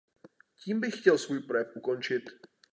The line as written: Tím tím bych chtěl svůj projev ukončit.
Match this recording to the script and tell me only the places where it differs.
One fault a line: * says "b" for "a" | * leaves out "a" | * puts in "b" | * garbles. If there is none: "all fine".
* leaves out "tím"